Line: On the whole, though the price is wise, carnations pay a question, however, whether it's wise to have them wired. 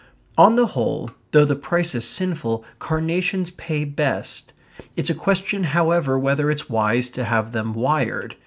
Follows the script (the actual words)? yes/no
no